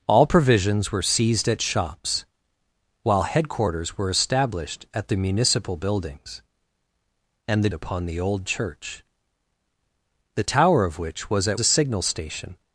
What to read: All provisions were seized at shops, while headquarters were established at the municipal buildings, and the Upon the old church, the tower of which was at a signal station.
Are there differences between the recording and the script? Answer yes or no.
no